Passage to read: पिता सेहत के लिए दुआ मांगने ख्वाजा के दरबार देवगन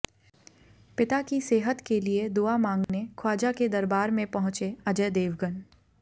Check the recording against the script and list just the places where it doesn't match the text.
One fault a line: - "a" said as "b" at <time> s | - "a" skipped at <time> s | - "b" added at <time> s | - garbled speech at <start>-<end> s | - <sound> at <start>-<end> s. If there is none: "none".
- "की" added at 1.2 s
- dropout at 2.8-2.9 s
- "में पहुंचे अजय" added at 4.1 s